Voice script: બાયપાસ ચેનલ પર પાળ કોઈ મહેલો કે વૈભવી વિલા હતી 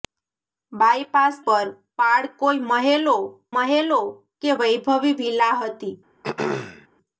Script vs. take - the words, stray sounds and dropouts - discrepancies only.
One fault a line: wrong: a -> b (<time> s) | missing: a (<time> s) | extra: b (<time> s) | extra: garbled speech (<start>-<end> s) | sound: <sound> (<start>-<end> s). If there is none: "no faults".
missing: ચેનલ (1.4 s)
extra: મહેલો (3.5 s)
sound: throat clearing (6.2-6.9 s)